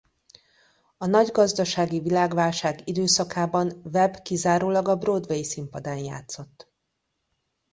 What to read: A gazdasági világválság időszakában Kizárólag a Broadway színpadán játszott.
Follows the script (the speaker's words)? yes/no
no